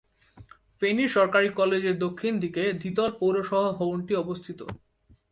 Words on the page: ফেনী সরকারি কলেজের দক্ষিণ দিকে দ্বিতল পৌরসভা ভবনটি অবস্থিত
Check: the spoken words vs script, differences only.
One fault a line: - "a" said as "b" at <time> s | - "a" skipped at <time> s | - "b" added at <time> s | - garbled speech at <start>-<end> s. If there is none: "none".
none